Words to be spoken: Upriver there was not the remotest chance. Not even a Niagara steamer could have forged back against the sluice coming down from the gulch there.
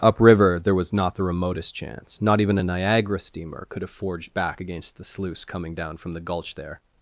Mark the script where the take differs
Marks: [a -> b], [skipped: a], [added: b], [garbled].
Upriver there was not the remotest chance. Not even a Niagara steamer could have forged back against the sluice coming down from the gulch there.